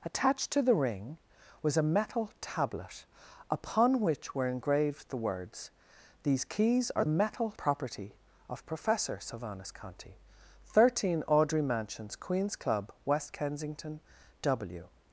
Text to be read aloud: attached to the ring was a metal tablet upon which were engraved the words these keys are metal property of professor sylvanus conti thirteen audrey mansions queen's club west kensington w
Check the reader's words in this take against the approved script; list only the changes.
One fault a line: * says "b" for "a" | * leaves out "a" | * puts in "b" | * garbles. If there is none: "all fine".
all fine